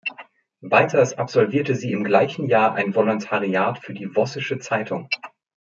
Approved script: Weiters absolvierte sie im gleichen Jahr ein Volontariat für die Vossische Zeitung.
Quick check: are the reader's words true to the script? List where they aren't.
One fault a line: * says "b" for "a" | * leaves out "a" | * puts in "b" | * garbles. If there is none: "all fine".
all fine